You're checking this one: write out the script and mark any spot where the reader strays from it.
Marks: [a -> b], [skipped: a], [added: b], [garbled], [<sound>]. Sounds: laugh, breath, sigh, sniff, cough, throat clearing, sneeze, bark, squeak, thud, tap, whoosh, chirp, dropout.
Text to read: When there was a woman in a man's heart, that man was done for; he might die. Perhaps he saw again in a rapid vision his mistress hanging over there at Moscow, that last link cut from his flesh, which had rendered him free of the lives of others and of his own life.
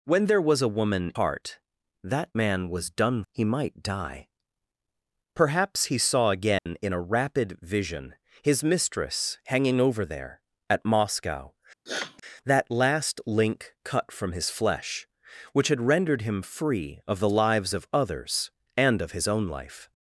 When there was a woman [skipped: in a man's] heart, that man was done [skipped: for;] he might die. Perhaps he saw again [dropout] in a rapid vision his mistress hanging over there at Moscow, [sniff] that last link cut from his flesh, which had rendered him free of the lives of others and of his own life.